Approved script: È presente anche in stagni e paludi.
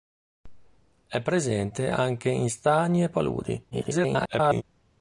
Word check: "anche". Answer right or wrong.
right